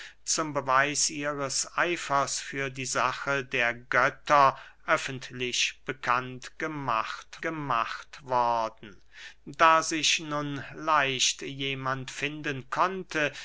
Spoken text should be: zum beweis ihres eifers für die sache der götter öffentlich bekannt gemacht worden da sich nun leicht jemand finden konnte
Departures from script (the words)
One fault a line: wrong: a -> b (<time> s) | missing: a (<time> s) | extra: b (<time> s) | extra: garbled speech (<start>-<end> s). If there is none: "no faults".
extra: gemacht (7.4 s)